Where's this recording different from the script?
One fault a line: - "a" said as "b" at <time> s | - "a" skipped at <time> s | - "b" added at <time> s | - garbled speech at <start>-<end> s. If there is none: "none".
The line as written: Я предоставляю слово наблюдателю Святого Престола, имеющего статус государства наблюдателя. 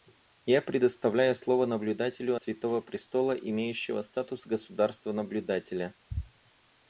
none